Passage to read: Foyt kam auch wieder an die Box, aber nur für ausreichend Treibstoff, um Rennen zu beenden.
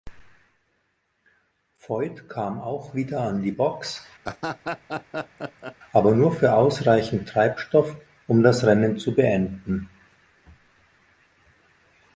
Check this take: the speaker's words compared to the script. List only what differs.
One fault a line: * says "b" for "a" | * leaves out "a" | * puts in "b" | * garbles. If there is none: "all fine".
* puts in "das"